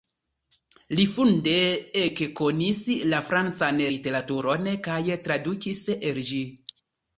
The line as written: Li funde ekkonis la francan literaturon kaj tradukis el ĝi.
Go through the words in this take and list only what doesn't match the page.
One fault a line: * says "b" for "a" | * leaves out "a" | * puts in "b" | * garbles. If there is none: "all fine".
all fine